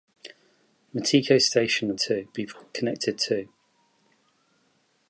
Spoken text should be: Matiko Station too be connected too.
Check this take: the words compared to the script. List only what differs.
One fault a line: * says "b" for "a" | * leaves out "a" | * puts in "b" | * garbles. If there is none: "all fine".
all fine